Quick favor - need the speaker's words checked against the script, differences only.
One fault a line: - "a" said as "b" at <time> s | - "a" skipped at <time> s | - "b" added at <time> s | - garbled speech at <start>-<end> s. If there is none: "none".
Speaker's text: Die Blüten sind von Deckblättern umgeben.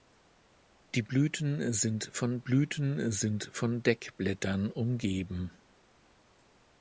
- "Blüten sind von" added at 2.4 s